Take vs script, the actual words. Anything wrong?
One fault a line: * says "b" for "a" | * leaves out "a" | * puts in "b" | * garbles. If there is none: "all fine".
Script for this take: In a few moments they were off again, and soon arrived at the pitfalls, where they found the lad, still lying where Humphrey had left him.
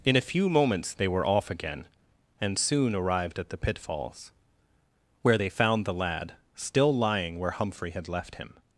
all fine